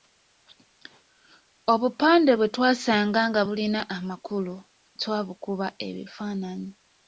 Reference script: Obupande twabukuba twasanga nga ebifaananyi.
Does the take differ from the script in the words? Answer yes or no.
yes